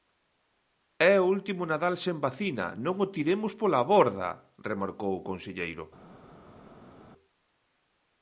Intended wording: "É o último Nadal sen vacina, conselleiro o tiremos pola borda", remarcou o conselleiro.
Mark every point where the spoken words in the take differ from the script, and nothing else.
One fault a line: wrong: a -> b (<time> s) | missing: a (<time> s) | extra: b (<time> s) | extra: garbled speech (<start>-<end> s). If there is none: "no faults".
wrong: conselleiro -> non (2.9 s)